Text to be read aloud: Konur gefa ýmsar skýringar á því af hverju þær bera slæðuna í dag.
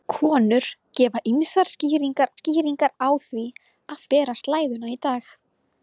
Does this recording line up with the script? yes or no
no